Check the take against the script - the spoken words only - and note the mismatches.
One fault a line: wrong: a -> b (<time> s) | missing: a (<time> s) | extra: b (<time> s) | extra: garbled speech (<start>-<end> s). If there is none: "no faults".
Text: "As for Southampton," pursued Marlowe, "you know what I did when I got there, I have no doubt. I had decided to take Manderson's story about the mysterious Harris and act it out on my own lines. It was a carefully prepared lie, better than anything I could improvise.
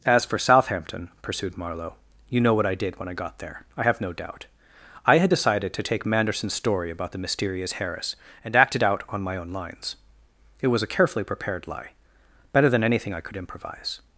no faults